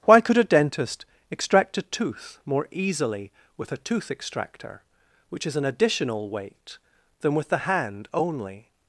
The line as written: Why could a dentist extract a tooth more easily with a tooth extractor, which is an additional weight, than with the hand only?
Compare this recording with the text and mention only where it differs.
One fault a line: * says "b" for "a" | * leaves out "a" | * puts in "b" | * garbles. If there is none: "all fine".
all fine